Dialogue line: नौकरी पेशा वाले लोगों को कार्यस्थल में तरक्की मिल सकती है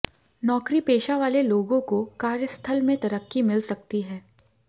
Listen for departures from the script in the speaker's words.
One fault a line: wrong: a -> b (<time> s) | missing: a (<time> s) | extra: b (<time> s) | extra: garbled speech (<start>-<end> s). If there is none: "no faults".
no faults